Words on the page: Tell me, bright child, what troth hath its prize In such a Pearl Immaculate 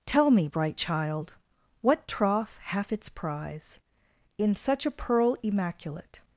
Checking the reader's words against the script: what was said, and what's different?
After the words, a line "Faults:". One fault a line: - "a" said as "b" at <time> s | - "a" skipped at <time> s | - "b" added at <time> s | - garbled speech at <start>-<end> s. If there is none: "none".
Tell me, bright child, what troth hath its prize In such a Pearl Immaculate
Faults:
none